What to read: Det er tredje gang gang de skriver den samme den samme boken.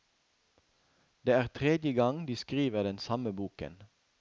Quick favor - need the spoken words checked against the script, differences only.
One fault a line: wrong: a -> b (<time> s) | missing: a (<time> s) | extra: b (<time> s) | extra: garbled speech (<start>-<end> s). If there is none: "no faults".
missing: gang (2.3 s)
missing: den samme (3.3 s)